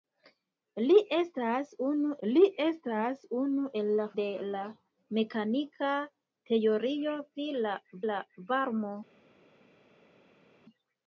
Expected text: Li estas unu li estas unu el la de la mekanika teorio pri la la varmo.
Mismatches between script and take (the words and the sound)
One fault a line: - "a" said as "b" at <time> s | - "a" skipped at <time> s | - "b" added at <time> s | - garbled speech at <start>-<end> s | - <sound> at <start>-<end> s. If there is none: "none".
none